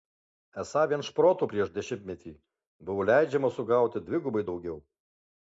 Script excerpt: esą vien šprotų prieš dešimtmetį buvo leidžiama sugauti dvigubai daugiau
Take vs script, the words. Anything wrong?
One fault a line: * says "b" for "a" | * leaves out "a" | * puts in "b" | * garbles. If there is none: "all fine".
all fine